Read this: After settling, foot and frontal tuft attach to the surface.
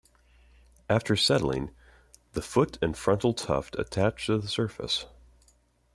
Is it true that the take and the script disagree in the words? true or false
true